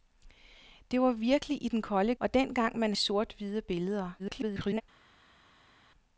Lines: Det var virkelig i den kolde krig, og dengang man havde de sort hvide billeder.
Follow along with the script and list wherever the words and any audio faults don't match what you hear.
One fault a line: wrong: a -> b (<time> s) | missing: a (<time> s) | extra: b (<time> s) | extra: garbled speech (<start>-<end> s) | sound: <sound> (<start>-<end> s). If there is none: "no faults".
missing: krig (2.1 s)
missing: havde de (2.9 s)
extra: garbled speech (4.2-4.8 s)